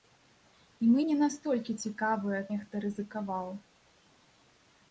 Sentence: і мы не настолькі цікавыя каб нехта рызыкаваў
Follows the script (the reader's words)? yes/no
no